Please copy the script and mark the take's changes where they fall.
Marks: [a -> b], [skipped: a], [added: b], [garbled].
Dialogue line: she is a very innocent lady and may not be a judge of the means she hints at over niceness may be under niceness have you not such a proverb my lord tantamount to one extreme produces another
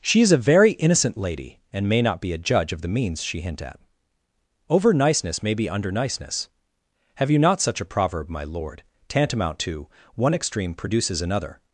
she is a very innocent lady and may not be a judge of the means she [hints -> hint] at over niceness may be under niceness have you not such a proverb my lord tantamount to one extreme produces another